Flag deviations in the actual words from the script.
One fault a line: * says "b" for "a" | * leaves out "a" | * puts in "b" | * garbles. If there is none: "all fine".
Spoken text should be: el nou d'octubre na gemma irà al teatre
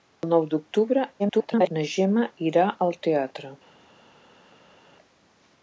* garbles